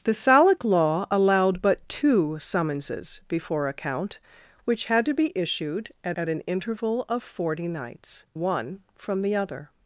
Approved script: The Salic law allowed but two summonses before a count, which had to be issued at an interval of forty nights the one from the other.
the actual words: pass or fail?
fail